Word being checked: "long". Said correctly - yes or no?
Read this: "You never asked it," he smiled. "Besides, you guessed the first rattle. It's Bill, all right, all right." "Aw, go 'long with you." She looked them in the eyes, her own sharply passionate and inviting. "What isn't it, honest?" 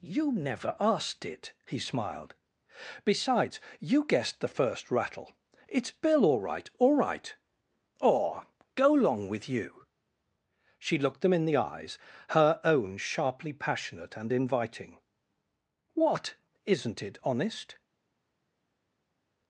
yes